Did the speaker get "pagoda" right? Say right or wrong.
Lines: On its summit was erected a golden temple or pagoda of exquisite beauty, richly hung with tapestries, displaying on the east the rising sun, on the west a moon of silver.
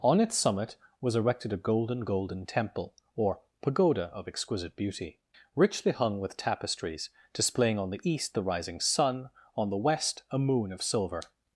right